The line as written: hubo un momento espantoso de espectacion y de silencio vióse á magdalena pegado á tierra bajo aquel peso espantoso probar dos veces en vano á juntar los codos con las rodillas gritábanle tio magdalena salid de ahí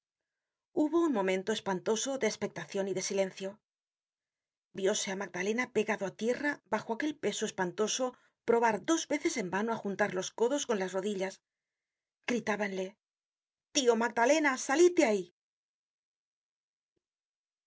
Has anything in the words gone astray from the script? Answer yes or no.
no